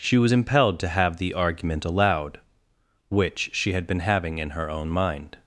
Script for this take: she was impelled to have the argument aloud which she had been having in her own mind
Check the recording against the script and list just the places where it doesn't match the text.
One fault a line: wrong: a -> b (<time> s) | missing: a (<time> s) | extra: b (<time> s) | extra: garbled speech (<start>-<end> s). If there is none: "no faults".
no faults